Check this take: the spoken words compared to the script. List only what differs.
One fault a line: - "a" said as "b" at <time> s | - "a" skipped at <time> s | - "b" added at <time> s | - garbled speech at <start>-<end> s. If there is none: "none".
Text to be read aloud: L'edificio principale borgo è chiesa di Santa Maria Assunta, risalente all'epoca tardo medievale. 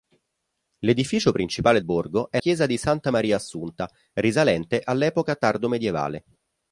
none